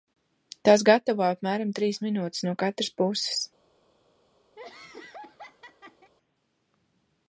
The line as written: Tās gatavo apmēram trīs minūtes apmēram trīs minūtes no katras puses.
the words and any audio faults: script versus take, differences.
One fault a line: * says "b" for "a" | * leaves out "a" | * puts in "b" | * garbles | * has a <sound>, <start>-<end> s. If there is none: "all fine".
* leaves out "apmēram trīs minūtes"
* has a laugh, 4.6-6.1 s